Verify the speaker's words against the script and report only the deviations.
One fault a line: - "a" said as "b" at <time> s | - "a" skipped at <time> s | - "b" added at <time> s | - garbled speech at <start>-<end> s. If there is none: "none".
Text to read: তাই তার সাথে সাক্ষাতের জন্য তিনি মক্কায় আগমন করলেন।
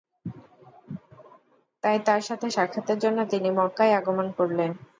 none